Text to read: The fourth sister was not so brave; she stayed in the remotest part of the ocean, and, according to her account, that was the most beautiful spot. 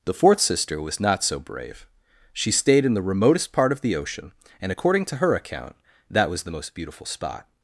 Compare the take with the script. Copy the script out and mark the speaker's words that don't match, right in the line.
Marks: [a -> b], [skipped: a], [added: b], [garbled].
The fourth sister was not so brave; she stayed in the remotest part of the ocean, and, according to her account, that was the most beautiful spot.